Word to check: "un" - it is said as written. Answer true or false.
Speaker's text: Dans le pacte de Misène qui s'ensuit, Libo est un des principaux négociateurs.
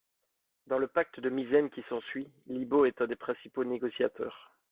true